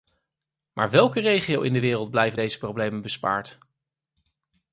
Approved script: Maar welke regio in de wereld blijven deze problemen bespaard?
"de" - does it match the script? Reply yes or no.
yes